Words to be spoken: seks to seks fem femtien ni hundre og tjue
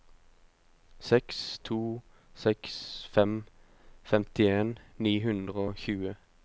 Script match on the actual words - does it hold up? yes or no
yes